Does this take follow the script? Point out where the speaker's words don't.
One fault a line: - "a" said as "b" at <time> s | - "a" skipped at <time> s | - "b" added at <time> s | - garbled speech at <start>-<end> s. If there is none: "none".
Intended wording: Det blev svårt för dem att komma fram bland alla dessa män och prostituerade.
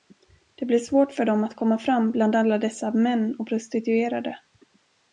none